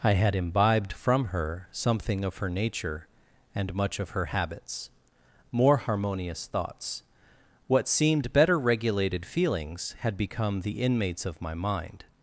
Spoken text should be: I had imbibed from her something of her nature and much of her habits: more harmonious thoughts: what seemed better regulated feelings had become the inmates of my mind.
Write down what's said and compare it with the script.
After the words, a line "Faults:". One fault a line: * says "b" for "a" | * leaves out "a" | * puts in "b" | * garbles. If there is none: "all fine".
I had imbibed from her something of her nature and much of her habits: more harmonious thoughts: what seemed better regulated feelings had become the inmates of my mind.
Faults:
all fine